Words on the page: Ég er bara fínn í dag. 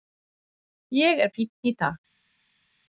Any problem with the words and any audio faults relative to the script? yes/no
yes